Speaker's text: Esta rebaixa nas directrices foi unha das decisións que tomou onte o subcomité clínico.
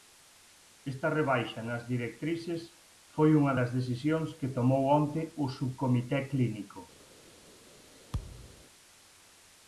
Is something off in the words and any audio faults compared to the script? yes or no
yes